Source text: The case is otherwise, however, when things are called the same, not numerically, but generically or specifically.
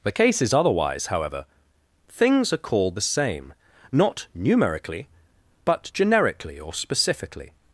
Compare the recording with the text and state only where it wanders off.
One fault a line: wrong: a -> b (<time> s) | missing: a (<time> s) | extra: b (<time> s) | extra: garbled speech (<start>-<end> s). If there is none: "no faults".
missing: when (1.4 s)